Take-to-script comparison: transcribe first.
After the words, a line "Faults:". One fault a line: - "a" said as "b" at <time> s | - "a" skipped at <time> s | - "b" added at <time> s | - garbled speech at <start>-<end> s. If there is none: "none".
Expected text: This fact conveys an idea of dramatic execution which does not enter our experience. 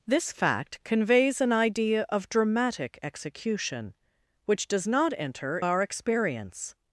This fact conveys an idea of dramatic execution which does not enter our experience.
Faults:
none